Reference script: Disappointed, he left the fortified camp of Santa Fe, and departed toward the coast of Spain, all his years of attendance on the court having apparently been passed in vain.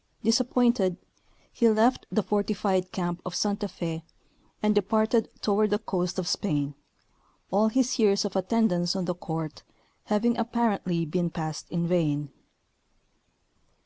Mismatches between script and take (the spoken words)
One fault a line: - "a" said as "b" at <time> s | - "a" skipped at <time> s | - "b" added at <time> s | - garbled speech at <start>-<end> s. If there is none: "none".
none